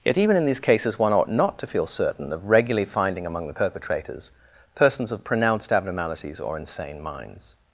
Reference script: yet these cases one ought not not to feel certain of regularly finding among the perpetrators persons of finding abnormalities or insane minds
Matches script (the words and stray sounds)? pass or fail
fail